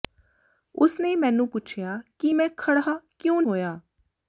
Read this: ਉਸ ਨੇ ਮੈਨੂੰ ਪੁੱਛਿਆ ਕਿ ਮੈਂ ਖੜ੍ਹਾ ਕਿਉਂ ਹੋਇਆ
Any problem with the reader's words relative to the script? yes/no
no